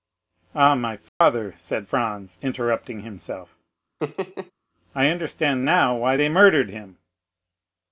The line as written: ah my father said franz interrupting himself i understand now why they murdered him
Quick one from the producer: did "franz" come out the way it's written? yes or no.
yes